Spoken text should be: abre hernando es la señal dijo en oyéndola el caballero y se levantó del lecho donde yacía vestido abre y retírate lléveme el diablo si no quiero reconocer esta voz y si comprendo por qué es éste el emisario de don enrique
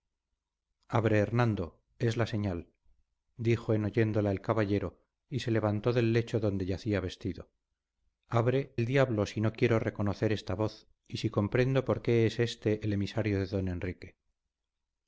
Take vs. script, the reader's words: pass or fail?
fail